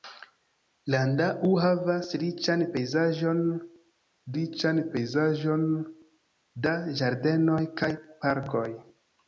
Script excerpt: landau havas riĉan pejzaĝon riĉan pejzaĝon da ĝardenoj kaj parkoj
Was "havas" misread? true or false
false